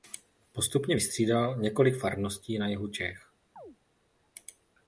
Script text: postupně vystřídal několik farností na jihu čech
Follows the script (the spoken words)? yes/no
yes